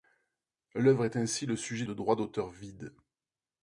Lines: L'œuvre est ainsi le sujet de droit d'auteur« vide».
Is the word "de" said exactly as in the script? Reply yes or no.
yes